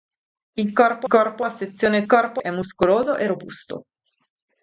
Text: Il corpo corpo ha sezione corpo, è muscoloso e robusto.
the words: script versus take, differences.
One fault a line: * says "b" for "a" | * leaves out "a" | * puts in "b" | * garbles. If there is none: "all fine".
all fine